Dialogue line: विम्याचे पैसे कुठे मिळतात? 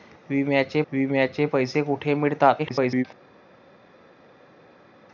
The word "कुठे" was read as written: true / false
true